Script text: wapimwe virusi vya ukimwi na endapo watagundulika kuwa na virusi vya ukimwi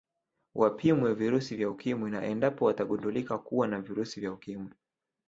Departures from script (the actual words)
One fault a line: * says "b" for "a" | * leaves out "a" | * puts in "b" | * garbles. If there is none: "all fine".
all fine